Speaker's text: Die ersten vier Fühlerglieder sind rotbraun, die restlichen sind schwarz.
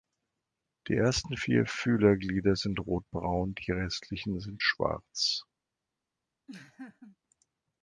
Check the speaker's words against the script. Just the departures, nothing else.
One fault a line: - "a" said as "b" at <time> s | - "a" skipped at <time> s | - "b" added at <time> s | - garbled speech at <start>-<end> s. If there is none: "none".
none